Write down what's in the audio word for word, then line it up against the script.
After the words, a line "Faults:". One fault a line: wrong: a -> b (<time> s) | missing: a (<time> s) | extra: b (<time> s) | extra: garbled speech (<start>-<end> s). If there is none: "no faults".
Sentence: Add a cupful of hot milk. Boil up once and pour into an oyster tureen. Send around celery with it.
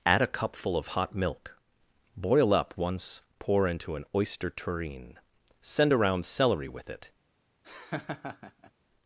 Add a cupful of hot milk. Boil up once pour into an oyster tureen. Send around celery with it.
Faults:
missing: and (3.2 s)